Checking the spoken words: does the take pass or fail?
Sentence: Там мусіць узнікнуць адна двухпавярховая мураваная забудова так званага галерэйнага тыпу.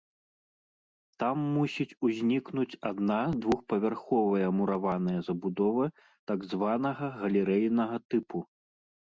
pass